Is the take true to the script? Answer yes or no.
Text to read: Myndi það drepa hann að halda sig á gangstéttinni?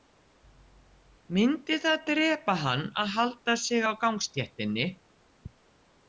yes